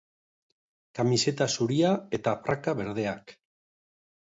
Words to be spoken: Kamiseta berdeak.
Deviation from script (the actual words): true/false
true